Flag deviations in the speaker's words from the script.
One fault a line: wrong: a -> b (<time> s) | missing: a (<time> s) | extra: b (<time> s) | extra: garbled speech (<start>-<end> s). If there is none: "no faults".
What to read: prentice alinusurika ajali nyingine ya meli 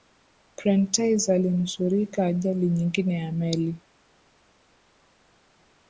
no faults